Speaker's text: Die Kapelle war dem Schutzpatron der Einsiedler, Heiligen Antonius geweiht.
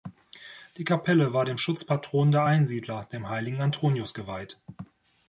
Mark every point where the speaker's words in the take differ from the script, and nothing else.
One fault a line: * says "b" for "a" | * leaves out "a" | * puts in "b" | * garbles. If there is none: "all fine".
* puts in "dem"